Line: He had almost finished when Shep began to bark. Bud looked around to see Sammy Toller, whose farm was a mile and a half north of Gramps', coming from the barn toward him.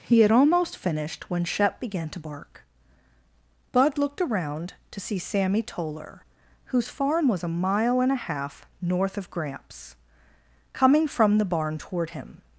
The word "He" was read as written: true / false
true